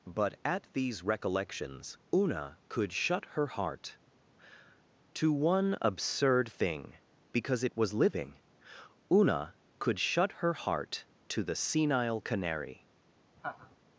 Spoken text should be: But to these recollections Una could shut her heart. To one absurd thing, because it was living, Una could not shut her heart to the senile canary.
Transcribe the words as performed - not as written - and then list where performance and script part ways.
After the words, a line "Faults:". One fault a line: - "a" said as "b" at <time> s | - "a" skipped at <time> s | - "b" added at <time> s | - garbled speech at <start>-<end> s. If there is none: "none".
But at these recollections Una could shut her heart. To one absurd thing, because it was living, Una could shut her heart to the senile canary.
Faults:
- "to" said as "at" at 0.4 s
- "not" skipped at 10.0 s